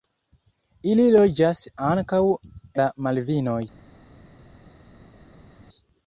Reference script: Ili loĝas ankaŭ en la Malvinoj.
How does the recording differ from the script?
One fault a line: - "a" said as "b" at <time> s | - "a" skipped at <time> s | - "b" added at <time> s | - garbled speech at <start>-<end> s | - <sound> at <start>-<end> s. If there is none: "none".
- "en" skipped at 2.2 s